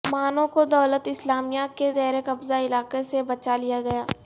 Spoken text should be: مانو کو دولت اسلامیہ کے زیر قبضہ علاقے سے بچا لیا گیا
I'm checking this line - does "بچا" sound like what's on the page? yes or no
yes